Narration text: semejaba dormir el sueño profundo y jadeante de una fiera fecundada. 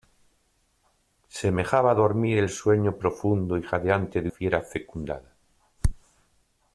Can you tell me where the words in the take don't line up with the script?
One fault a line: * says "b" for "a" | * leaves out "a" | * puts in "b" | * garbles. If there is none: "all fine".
* leaves out "una"